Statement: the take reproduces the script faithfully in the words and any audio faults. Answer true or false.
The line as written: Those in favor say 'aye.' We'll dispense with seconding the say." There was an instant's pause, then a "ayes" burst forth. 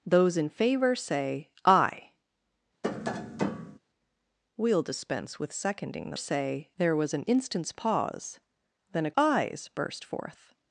false